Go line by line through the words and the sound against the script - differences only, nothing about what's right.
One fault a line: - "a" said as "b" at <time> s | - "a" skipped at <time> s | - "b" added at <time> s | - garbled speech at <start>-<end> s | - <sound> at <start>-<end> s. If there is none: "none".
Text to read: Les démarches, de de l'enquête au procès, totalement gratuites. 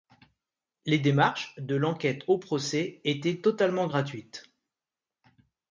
- "de" skipped at 1.8 s
- "étaient" added at 3.0 s